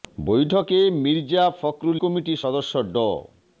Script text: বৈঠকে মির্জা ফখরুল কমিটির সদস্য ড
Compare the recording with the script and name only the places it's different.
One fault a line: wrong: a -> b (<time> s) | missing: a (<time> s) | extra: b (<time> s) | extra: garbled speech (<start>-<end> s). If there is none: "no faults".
no faults